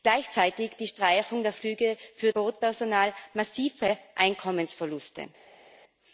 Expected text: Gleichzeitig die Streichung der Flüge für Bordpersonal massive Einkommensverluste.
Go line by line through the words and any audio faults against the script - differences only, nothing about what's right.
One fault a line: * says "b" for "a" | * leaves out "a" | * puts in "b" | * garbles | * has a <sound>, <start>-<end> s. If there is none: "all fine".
all fine